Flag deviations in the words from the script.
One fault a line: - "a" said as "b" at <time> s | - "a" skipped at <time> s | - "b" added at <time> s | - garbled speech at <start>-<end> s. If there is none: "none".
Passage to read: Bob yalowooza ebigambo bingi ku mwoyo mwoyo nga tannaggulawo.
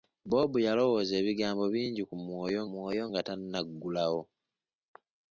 none